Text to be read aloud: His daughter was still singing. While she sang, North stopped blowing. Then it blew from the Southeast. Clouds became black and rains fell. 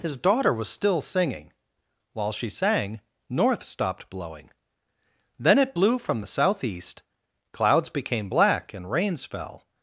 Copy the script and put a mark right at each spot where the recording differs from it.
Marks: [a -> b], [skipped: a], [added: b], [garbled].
His daughter was still singing. While she sang, North stopped blowing. Then it blew from the Southeast. Clouds became black and rains fell.